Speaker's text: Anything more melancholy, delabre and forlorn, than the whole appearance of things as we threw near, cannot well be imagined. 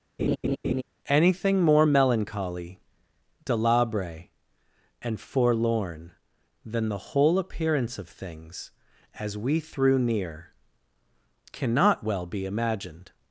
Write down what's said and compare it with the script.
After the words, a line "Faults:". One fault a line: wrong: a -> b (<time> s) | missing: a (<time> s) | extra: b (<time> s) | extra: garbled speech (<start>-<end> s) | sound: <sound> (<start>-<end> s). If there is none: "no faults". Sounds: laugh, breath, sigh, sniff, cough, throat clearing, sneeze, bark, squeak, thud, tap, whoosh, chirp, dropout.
Anything more melancholy, delabre and forlorn, than the whole appearance of things as we threw near, cannot well be imagined.
Faults:
sound: laugh (0.2-0.8 s)